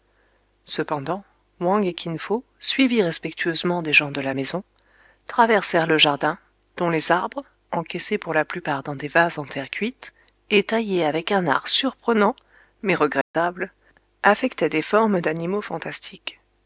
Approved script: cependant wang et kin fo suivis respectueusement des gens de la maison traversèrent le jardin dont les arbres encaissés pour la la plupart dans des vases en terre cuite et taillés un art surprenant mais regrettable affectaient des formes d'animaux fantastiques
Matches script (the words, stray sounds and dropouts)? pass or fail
fail